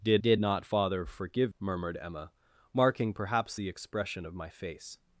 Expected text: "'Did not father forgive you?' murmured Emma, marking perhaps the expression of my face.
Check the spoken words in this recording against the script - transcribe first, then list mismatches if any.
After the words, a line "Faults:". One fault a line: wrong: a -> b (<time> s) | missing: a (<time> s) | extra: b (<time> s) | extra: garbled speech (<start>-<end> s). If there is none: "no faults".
"'Did did not father forgive?' murmured Emma, marking perhaps the expression of my face.
Faults:
extra: did (0.2 s)
missing: you (1.5 s)